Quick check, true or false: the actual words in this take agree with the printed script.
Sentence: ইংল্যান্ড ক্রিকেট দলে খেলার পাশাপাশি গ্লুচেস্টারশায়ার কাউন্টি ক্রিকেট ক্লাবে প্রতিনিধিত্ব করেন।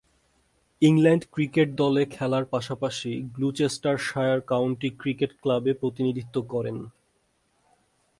true